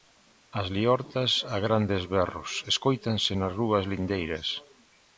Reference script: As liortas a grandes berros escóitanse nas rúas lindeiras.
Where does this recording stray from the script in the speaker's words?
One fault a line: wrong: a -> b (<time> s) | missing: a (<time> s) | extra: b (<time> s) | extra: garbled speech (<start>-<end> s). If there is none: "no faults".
no faults